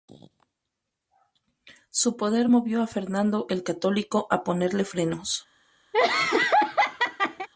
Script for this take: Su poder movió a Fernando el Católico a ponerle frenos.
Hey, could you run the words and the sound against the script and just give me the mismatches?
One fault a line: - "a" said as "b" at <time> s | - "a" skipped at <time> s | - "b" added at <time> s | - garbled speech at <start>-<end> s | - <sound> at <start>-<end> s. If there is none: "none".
- laugh at 5.9-7.5 s